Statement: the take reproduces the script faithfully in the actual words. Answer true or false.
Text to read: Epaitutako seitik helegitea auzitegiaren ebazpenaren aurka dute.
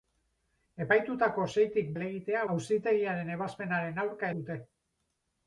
true